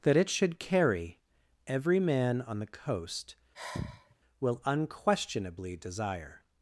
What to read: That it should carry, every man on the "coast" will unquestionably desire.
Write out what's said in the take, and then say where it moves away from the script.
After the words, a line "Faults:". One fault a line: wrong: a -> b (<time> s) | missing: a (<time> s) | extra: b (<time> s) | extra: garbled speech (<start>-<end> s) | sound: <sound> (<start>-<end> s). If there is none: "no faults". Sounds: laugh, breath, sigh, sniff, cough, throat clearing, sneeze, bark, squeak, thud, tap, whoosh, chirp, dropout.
That it should carry, every man on the "coast" will unquestionably desire.
Faults:
sound: sigh (3.5-4.1 s)